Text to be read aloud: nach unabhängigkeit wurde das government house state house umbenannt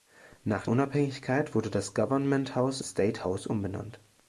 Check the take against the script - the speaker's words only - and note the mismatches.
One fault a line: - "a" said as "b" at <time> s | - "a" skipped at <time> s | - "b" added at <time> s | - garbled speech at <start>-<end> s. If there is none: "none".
none